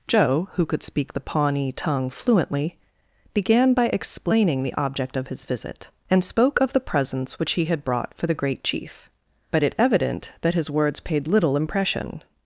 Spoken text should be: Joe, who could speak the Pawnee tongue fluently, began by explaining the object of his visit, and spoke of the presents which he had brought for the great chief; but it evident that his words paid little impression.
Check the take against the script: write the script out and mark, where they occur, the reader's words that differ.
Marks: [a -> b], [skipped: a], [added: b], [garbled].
Joe, who could speak the Pawnee tongue fluently, began by explaining the object of his visit, and spoke of the presents which he had brought for the great chief; but it evident that his words paid little impression.